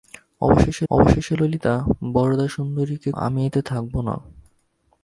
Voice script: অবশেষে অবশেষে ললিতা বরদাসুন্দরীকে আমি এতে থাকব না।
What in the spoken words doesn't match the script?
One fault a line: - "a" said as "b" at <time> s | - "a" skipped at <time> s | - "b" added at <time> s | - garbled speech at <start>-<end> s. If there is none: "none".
none